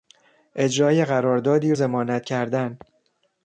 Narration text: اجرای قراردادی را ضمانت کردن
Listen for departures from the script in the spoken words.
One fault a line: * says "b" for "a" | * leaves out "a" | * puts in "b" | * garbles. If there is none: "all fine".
* leaves out "را"